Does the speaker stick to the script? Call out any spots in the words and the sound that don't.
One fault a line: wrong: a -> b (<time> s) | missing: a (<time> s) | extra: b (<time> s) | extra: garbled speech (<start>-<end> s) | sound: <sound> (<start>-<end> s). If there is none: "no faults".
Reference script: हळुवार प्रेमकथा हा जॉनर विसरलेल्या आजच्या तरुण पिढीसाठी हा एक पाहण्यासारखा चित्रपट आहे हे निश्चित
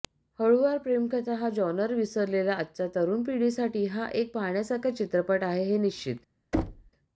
sound: thud (6.5-6.9 s)